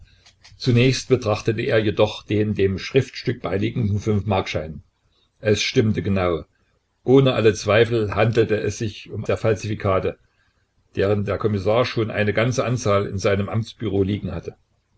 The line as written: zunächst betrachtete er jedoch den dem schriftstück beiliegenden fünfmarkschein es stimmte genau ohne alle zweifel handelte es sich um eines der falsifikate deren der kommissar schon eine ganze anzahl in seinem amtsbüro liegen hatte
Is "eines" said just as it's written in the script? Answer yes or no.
no